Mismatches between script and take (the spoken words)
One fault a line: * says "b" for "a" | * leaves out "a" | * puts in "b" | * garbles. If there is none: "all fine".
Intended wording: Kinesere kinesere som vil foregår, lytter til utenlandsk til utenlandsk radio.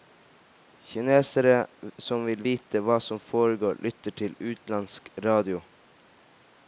* leaves out "kinesere"
* puts in "vite hva som"
* leaves out "til utenlandsk"